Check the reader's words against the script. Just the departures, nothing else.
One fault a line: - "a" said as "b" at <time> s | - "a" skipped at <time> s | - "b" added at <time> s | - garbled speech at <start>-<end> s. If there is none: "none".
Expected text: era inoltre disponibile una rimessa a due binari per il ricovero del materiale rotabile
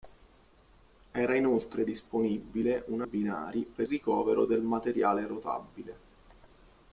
- "rimessa a due" skipped at 3.1 s
- "il" skipped at 3.9 s